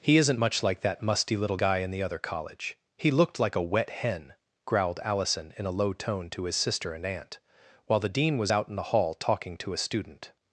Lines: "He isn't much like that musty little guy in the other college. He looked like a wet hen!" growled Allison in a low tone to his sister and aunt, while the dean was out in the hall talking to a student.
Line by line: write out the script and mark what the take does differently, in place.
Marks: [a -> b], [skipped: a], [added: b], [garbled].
"He isn't much like that musty little guy in the other college. He looked like a wet hen!" growled Allison in a low tone to his sister and aunt, while the dean was out in the hall talking to a student.